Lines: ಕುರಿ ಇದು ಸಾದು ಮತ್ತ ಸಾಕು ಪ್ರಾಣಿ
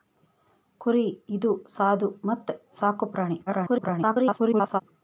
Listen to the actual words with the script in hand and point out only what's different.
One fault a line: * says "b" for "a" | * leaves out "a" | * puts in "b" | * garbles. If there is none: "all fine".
* garbles